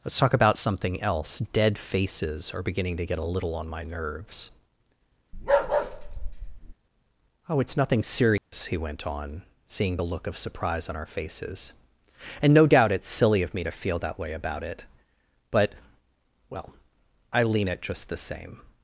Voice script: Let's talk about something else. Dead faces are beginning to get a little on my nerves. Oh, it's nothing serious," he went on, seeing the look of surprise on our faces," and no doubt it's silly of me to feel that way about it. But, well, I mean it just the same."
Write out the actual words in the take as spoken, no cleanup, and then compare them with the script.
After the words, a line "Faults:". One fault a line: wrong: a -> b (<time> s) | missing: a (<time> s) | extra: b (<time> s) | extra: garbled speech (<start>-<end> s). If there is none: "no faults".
Let's talk about something else. Dead faces are beginning to get a little on my nerves. Oh, it's nothing serious," he went on, seeing the look of surprise on our faces," and no doubt it's silly of me to feel that way about it. But, well, I lean it just the same."
Faults:
wrong: mean -> lean (17.4 s)